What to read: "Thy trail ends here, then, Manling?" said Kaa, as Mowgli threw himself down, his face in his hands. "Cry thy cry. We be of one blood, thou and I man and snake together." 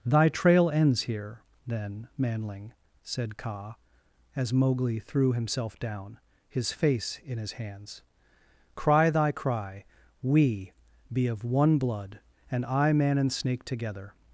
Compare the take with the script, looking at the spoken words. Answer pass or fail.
fail